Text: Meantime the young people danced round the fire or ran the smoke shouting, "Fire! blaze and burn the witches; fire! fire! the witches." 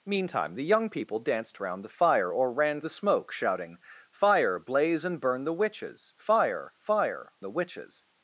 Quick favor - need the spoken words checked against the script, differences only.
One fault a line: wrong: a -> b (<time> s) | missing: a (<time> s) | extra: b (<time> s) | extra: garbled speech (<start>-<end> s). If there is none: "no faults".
no faults